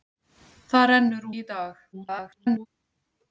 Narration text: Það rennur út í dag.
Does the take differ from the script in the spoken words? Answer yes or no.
yes